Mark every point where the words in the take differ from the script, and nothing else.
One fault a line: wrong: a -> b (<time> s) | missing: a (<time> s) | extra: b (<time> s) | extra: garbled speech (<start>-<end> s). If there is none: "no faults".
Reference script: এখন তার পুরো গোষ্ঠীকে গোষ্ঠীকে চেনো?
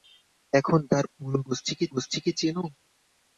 no faults